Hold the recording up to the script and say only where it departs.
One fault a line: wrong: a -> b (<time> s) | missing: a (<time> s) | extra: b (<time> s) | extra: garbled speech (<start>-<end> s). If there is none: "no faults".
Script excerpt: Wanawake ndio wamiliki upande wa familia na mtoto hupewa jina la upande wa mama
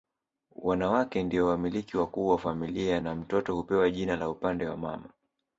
wrong: upande -> wakuu (2.0 s)